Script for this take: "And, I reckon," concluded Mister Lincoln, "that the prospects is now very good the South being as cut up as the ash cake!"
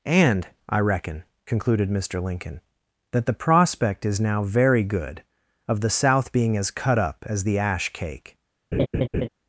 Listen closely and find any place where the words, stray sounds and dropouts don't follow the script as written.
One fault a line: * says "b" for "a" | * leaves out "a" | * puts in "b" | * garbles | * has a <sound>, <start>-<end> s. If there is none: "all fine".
* says "prospect" for "prospects"
* puts in "of"
* has a laugh, 8.7-9.3 s